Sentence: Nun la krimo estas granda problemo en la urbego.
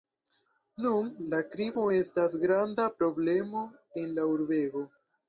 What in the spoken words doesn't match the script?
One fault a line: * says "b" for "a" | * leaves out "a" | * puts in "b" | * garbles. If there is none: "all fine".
all fine